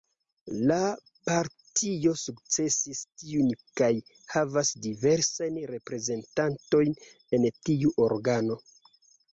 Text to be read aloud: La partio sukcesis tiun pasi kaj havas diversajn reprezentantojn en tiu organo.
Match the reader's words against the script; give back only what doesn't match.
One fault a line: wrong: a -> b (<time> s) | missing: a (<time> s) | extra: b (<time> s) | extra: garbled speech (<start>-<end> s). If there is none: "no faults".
missing: pasi (3.5 s)